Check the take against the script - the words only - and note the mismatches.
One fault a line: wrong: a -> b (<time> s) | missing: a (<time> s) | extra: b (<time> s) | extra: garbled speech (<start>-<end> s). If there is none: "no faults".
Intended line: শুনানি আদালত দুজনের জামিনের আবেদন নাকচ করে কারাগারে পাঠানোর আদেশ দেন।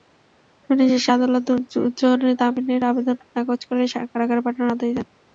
extra: শেষে (0.9 s)